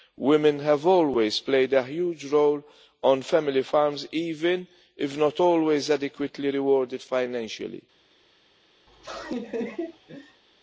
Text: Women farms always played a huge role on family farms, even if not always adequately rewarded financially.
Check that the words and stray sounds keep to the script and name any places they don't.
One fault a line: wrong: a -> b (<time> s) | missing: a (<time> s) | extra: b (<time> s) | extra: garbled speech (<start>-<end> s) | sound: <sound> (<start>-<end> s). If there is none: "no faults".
wrong: farms -> have (0.6 s)
sound: laugh (8.9-10.4 s)